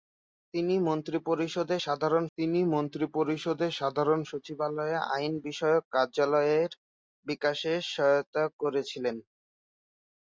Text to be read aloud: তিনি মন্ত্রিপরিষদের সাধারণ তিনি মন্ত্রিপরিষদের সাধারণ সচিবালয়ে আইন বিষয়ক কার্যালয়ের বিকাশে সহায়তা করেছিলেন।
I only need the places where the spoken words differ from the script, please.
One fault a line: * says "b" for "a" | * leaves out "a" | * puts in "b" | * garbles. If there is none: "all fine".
all fine